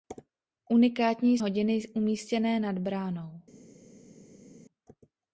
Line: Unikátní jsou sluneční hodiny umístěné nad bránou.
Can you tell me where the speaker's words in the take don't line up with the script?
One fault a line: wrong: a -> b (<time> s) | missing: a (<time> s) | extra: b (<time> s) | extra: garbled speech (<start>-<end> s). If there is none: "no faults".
missing: jsou sluneční (1.4 s)